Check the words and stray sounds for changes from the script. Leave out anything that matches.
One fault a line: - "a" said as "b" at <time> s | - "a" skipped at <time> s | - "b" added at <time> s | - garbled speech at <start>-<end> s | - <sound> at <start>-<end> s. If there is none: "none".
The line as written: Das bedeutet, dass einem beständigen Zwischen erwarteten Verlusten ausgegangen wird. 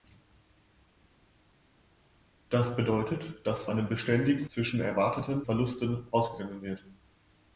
none